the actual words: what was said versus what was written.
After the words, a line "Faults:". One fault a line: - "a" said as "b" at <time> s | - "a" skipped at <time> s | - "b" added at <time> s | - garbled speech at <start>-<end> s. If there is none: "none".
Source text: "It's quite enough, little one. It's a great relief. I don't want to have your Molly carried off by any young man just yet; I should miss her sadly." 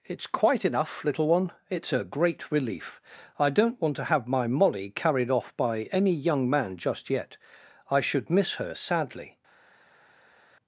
"It's quite enough, little one. It's a great relief. I don't want to have my Molly carried off by any young man just yet; I should miss her sadly."
Faults:
- "your" said as "my" at 4.3 s